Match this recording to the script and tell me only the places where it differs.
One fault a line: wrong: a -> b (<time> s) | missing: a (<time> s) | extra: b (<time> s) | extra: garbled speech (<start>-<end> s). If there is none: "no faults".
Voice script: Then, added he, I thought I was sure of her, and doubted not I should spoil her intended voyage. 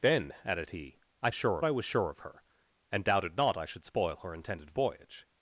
wrong: thought -> sure (1.3 s)